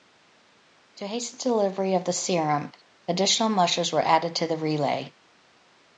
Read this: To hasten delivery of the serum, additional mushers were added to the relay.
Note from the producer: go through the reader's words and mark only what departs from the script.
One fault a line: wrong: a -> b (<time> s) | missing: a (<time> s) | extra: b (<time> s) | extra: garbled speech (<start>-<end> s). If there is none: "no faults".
no faults